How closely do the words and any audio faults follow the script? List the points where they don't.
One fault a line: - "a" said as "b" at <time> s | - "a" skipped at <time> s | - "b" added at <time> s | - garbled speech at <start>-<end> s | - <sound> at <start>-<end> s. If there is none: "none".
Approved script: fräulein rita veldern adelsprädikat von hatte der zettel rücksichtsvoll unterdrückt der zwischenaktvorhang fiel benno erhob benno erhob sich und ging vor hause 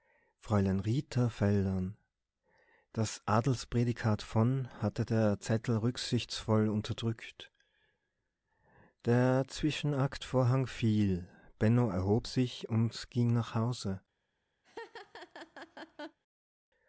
- "das" added at 2.9 s
- "benno erhob" skipped at 12.3 s
- "vor" said as "nach" at 13.3 s
- laugh at 14.6-16.2 s